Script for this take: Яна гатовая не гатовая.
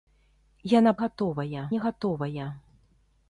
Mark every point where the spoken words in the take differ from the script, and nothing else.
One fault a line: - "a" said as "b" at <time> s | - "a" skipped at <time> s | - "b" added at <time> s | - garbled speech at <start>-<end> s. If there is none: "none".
none